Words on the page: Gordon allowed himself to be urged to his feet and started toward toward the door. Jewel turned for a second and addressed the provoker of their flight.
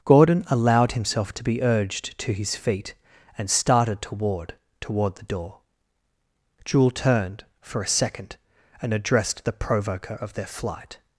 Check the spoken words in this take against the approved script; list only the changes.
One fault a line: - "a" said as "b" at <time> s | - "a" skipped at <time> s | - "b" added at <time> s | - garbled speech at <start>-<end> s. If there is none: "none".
none